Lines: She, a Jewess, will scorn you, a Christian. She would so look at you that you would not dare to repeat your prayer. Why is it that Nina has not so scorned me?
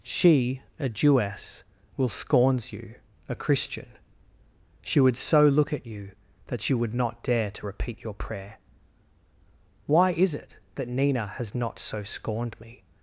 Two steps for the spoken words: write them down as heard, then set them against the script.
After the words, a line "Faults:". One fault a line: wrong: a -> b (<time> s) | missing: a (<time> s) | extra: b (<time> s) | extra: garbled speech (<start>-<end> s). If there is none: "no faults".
She, a Jewess, will scorns you, a Christian. She would so look at you that you would not dare to repeat your prayer. Why is it that Nina has not so scorned me?
Faults:
wrong: scorn -> scorns (2.1 s)